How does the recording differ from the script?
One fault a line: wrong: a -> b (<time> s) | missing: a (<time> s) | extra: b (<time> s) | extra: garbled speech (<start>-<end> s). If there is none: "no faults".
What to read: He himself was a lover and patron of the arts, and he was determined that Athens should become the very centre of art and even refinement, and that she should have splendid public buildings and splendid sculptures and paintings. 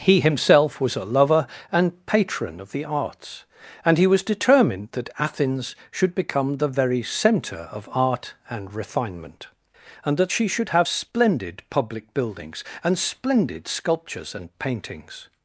missing: even (8.7 s)